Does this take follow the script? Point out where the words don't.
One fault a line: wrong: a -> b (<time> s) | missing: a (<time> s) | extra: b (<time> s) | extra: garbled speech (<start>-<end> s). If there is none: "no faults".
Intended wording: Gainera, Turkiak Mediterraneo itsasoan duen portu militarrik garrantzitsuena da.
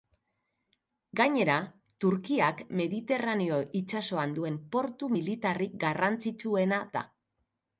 no faults